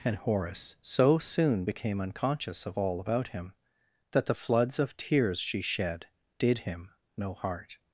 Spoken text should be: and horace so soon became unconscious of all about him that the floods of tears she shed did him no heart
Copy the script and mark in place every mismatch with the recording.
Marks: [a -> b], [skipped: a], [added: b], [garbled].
and horace so soon became unconscious of all about him that the floods of tears she shed did him no heart